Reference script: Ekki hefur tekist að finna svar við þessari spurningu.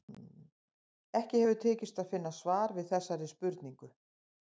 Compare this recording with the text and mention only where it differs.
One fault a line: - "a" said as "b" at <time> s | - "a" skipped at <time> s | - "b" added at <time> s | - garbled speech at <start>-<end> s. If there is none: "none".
none